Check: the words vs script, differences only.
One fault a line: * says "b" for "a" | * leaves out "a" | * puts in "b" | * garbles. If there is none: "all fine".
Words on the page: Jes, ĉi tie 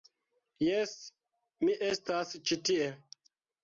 * puts in "mi estas"